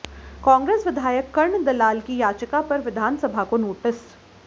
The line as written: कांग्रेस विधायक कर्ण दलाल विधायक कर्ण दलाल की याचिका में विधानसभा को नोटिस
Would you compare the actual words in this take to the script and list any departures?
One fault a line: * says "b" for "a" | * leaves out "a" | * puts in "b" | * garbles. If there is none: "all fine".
* leaves out "विधायक कर्ण दलाल"
* says "पर" for "में"